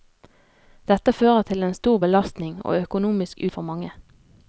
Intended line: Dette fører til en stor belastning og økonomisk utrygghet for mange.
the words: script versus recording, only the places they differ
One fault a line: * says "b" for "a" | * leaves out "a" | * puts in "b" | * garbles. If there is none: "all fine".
* leaves out "utrygghet"